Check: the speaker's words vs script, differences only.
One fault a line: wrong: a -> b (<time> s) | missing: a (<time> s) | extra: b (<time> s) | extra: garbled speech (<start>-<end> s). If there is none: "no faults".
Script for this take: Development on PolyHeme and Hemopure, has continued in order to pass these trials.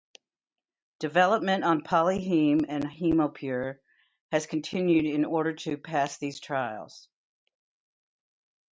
no faults